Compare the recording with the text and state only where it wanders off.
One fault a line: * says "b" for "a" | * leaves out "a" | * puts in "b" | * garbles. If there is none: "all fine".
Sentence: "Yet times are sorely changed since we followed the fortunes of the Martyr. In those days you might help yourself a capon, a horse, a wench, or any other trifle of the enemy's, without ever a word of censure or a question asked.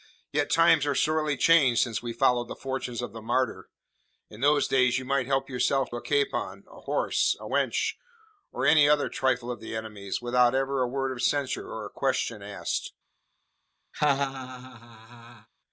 all fine